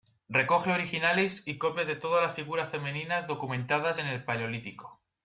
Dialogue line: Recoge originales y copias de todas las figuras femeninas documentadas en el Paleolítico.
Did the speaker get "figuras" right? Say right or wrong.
right